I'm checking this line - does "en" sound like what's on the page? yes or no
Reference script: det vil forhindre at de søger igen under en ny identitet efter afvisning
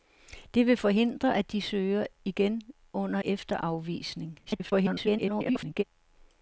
no